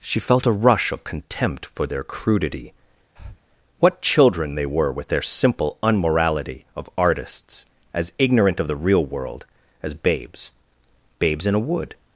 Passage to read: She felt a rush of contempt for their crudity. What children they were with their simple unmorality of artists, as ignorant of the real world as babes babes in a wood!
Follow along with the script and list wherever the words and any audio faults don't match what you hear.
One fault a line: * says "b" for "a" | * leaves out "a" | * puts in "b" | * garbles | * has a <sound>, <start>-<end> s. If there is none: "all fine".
* has a breath, 3.2-3.4 s